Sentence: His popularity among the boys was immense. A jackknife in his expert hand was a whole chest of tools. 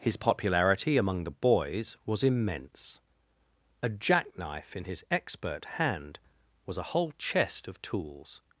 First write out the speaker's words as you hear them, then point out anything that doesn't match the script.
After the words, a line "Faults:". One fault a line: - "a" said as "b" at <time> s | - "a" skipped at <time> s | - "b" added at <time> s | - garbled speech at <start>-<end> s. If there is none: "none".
His popularity among the boys was immense. A jackknife in his expert hand was a whole chest of tools.
Faults:
none